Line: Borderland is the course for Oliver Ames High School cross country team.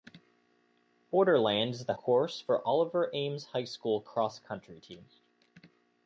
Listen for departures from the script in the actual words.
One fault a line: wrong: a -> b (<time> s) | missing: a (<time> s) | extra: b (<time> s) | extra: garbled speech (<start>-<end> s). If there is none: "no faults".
no faults